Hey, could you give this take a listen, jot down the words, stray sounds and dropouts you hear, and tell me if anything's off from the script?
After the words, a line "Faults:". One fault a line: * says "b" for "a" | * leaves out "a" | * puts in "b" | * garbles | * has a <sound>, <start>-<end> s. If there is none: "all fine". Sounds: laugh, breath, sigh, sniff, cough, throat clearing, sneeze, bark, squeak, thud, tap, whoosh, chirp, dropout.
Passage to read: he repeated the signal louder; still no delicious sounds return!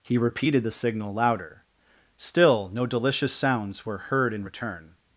he repeated the signal louder; still no delicious sounds were heard in return!
Faults:
* puts in "were heard in"